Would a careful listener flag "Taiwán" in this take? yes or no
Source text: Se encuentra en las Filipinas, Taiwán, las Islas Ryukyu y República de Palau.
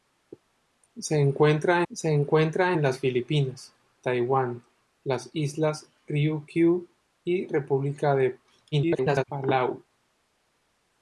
no